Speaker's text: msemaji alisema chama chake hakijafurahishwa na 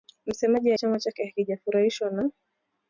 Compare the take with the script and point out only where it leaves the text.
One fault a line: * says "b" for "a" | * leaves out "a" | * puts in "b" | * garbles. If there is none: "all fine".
* leaves out "alisema"